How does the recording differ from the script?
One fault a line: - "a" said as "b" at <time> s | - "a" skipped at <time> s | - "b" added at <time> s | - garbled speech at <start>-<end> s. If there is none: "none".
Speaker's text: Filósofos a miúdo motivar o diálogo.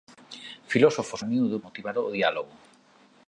none